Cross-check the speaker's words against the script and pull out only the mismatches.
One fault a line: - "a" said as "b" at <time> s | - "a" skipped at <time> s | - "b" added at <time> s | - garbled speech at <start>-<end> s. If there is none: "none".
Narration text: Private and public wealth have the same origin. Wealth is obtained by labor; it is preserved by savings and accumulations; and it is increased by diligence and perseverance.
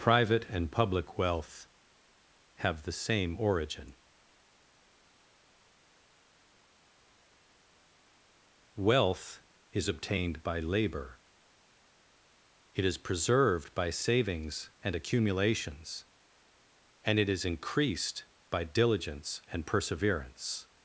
none